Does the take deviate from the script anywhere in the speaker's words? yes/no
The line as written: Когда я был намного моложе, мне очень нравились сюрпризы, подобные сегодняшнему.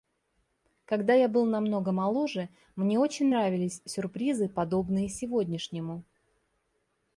no